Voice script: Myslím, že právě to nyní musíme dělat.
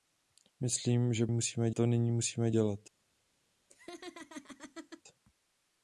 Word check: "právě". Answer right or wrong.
wrong